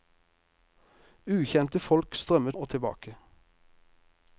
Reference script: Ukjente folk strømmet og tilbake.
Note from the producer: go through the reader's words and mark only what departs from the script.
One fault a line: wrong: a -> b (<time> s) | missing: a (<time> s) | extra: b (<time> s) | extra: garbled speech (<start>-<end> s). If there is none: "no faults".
no faults